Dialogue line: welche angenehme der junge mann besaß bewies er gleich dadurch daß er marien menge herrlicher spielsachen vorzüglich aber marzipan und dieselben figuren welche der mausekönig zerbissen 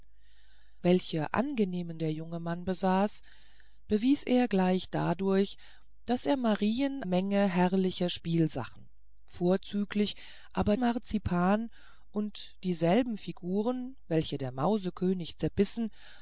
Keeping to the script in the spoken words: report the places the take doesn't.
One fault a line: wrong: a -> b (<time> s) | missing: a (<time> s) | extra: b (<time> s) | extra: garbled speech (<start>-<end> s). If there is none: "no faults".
no faults